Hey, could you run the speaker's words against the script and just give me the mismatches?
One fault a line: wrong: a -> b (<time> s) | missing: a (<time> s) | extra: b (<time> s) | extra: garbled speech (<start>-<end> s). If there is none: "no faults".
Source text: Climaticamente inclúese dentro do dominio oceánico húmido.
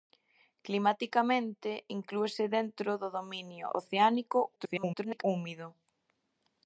extra: garbled speech (4.6-5.2 s)